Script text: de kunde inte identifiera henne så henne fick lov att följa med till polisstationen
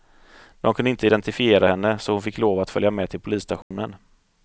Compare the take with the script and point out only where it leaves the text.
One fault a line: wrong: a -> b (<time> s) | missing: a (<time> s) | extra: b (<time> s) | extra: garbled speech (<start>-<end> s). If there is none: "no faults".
wrong: henne -> hon (2.1 s)